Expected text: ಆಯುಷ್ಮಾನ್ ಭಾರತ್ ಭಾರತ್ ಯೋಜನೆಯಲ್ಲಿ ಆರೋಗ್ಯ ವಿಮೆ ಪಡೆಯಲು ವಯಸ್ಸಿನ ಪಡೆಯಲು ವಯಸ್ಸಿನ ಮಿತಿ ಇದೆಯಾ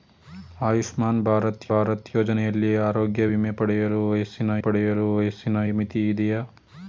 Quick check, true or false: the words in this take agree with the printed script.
true